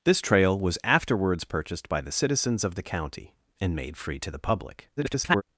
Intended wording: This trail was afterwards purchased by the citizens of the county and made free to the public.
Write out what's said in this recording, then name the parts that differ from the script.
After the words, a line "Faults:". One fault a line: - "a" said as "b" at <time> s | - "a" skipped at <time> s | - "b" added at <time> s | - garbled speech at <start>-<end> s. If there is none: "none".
This trail was afterwards purchased by the citizens of the county and made free to the public. [garbled]
Faults:
- garbled speech at 5.0-5.4 s